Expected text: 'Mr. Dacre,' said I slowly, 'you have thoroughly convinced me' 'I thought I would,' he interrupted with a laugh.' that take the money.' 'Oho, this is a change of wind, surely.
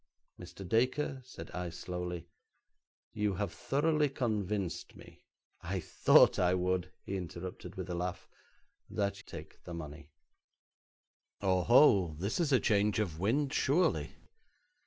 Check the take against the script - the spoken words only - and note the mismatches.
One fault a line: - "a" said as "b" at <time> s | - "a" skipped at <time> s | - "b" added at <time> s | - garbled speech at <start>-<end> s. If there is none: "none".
none